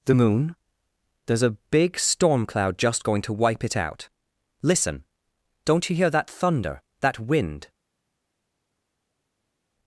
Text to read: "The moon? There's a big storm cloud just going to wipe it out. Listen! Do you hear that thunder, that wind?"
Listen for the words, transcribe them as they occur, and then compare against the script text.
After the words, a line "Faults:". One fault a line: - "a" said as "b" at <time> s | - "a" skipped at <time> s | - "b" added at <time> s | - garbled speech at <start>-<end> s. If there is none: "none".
"The moon? There's a big storm cloud just going to wipe it out. Listen! Don't you hear that thunder, that wind?"
Faults:
- "Do" said as "Don't" at 5.6 s